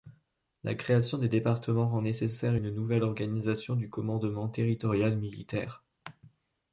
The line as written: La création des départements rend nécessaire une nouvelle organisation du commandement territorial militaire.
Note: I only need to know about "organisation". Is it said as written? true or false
true